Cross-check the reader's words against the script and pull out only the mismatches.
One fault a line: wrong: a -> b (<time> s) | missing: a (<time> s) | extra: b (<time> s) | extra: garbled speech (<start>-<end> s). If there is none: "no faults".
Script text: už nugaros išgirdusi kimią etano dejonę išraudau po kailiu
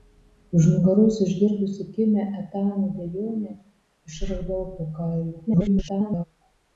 extra: garbled speech (5.5-6.2 s)